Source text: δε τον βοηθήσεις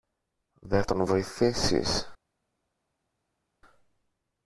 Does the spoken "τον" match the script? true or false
true